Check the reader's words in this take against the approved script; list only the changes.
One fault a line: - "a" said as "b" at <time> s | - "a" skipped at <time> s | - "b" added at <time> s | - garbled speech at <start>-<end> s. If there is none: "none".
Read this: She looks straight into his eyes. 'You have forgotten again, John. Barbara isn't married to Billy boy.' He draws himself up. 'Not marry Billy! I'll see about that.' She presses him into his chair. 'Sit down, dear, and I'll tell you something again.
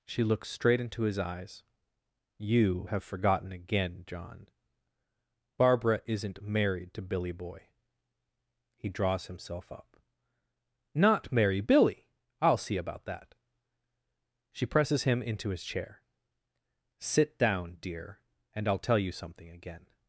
none